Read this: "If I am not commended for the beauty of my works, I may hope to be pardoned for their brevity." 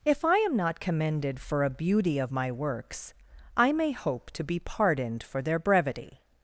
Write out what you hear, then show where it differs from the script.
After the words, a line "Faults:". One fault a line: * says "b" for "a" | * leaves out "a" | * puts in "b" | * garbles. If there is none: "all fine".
"If I am not commended for a beauty of my works, I may hope to be pardoned for their brevity."
Faults:
* says "a" for "the"